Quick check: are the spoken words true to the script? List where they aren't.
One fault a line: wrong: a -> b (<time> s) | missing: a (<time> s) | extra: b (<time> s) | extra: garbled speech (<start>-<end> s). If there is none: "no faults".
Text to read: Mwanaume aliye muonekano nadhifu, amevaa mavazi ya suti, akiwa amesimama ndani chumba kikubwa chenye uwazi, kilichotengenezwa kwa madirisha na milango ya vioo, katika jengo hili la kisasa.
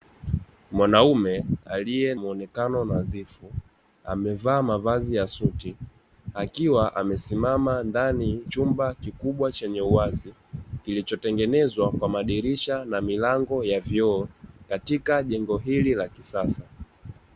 no faults